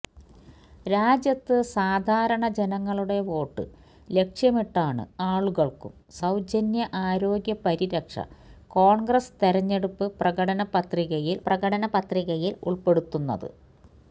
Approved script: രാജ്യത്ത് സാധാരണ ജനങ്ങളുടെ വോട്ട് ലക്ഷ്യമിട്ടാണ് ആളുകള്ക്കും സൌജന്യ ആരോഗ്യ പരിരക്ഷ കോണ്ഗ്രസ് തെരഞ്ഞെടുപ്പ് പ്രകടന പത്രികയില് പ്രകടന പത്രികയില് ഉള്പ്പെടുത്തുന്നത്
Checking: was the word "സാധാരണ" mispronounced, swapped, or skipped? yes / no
no